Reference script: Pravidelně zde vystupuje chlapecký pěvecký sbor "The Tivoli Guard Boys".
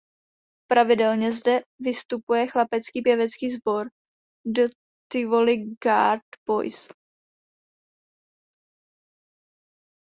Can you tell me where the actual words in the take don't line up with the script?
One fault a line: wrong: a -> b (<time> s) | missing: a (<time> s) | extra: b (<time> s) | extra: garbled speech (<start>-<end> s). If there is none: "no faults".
no faults